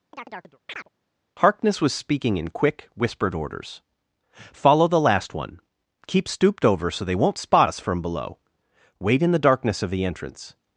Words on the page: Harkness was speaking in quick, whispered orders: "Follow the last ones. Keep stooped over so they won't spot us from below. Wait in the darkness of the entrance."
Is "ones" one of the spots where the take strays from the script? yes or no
yes